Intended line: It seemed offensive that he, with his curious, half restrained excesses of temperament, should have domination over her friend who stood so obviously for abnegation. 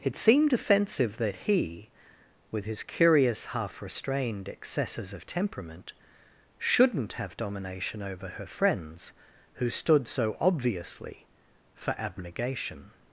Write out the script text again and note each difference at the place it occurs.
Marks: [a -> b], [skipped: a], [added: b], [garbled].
It seemed offensive that he, with his curious, half restrained excesses of temperament, [should -> shouldn't] have domination over her [friend -> friends] who stood so obviously for abnegation.